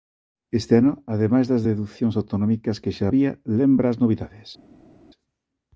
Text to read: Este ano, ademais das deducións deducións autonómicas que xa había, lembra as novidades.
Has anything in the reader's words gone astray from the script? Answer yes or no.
yes